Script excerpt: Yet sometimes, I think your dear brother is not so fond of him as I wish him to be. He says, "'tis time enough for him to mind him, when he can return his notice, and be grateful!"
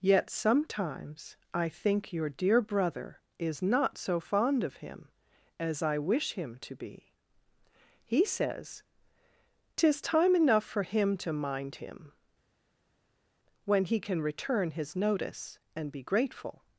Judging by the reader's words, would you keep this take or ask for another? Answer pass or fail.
pass